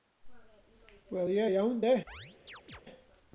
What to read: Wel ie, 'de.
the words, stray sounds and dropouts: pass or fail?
fail